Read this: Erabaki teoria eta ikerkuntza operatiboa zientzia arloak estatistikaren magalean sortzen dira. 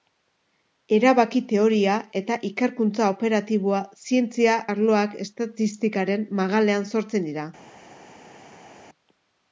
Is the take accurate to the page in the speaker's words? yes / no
yes